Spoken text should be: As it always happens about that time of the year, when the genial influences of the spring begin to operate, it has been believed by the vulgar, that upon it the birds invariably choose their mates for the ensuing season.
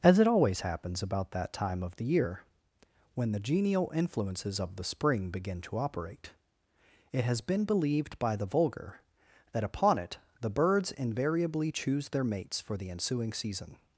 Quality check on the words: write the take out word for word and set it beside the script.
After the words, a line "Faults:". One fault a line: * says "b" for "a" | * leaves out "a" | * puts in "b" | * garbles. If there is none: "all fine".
As it always happens about that time of the year, when the genial influences of the spring begin to operate, it has been believed by the vulgar, that upon it the birds invariably choose their mates for the ensuing season.
Faults:
all fine